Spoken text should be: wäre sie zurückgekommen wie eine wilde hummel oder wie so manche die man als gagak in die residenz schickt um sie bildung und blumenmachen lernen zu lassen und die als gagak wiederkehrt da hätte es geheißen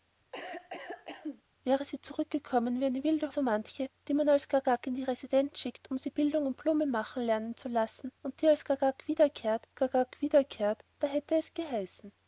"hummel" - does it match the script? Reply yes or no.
no